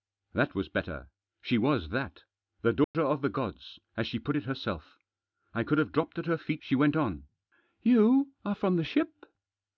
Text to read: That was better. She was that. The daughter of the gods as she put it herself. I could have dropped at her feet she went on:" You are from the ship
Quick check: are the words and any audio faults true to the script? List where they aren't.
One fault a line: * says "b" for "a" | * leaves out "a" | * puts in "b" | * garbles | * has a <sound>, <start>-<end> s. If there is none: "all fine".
* has a dropout, 2.8-2.9 s